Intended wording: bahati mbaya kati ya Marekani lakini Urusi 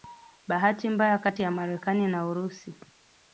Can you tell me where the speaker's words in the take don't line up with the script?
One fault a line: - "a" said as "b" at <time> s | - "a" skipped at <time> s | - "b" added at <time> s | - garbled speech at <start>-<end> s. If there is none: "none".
- "lakini" said as "na" at 2.1 s